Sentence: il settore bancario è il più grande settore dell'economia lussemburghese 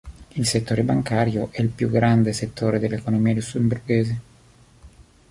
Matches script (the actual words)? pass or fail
pass